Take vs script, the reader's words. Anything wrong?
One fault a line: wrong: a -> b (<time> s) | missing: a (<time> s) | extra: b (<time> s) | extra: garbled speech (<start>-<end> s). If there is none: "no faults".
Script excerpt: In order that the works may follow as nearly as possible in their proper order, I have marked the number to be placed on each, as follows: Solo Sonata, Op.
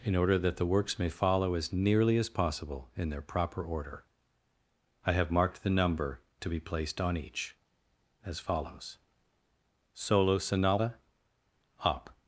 no faults